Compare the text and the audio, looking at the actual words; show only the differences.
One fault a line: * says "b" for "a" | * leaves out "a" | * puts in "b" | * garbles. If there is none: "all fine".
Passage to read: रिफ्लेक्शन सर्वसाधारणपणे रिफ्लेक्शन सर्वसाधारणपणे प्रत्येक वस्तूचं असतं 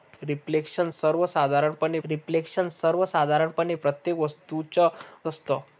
all fine